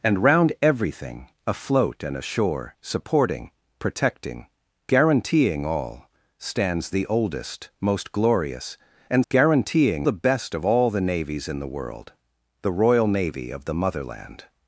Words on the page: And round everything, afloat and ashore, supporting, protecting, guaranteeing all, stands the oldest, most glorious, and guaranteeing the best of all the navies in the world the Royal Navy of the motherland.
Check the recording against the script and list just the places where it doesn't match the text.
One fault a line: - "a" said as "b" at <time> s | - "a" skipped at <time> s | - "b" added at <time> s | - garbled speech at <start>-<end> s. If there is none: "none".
none